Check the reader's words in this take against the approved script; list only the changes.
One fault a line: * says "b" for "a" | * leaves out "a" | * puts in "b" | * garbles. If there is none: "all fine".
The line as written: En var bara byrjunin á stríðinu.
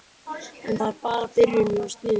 all fine